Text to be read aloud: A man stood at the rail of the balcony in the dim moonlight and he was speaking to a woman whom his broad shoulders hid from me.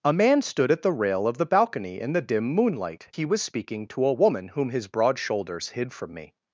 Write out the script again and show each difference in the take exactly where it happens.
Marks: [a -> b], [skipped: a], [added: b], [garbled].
A man stood at the rail of the balcony in the dim moonlight [skipped: and] he was speaking to a woman whom his broad shoulders hid from me.